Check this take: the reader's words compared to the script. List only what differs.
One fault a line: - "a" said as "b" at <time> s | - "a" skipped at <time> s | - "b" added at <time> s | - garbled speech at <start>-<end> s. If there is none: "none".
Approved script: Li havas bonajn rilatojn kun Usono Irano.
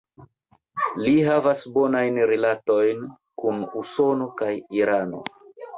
- "kaj" added at 4.4 s